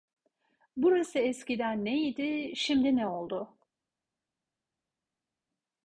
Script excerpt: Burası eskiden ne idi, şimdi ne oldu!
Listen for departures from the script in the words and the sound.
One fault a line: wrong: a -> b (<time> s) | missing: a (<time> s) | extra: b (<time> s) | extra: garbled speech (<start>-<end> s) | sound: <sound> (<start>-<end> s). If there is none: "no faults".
no faults